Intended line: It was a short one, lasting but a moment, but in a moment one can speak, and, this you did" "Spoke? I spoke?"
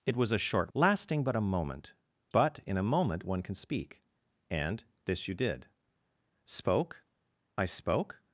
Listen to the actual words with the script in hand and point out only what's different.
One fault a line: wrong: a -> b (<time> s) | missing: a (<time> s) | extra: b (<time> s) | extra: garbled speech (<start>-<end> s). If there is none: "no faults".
missing: one (0.7 s)